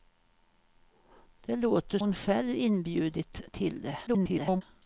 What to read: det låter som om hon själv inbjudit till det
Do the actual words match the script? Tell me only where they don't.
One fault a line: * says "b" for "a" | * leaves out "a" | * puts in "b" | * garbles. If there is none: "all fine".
* leaves out "som om"
* garbles